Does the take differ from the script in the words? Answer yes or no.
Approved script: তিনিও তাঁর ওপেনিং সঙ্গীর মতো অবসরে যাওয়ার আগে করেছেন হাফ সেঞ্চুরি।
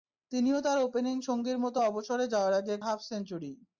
yes